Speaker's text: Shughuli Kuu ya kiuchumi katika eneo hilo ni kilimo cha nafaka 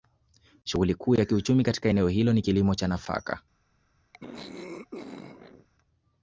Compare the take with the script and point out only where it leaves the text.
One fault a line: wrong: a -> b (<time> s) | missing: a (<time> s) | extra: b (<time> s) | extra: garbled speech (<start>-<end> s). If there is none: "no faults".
no faults